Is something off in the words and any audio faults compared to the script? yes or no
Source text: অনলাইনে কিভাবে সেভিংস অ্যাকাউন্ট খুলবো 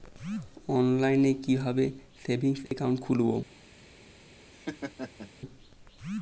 yes